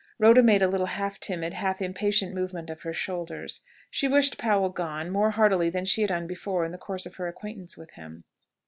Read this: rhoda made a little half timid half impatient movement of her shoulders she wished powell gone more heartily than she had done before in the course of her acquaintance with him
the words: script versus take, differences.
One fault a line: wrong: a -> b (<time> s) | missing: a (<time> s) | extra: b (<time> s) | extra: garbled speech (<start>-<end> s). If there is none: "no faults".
no faults